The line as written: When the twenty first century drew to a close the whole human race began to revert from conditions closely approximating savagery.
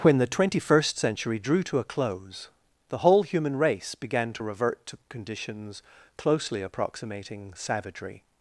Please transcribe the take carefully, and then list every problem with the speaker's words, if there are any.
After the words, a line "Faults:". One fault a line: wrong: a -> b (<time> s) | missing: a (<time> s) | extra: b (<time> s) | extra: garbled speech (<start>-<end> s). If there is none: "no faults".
When the twenty first century drew to a close the whole human race began to revert to conditions closely approximating savagery.
Faults:
wrong: from -> to (4.9 s)